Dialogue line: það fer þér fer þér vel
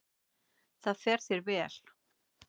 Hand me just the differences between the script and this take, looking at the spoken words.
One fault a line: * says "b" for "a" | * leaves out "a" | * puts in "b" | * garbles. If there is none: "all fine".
* leaves out "fer þér"